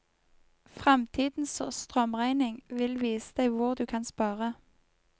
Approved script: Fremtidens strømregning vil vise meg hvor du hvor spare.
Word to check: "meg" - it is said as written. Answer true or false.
false